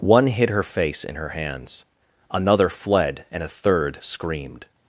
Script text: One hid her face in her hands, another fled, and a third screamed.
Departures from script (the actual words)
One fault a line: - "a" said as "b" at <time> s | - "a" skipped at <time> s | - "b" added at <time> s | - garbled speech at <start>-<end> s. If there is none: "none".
none